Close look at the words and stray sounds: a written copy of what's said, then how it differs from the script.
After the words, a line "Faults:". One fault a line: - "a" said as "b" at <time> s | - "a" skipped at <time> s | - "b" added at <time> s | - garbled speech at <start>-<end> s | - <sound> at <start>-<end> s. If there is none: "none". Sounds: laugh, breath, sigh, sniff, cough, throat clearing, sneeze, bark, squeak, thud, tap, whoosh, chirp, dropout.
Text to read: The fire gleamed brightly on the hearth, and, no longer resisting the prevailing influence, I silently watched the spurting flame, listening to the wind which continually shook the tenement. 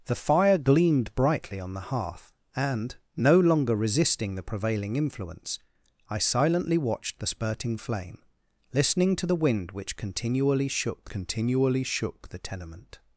The fire gleamed brightly on the hearth, and, no longer resisting the prevailing influence, I silently watched the spurting flame, listening to the wind which continually shook continually shook the tenement.
Faults:
- "continually shook" added at 11.1 s